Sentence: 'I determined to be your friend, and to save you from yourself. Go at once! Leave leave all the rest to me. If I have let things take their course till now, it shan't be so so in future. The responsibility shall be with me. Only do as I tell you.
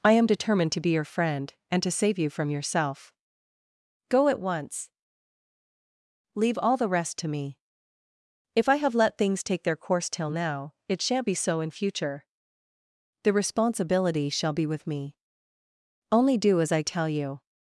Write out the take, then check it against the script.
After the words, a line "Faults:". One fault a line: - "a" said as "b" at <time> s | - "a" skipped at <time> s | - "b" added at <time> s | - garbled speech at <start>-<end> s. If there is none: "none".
'I am determined to be your friend, and to save you from yourself. Go at once! Leave all the rest to me. If I have let things take their course till now, it shan't be so in future. The responsibility shall be with me. Only do as I tell you.
Faults:
- "am" added at 0.1 s
- "leave" skipped at 6.6 s
- "so" skipped at 11.6 s